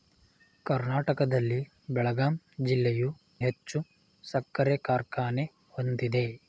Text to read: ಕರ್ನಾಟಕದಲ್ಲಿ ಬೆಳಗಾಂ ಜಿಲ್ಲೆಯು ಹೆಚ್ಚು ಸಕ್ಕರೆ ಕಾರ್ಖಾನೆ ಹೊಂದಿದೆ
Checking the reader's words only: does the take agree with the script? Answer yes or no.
yes